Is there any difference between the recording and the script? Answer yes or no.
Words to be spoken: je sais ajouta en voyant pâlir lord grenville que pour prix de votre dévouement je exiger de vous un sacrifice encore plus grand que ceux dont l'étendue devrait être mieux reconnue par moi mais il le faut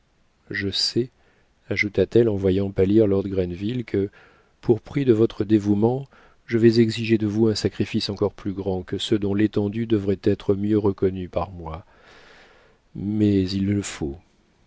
yes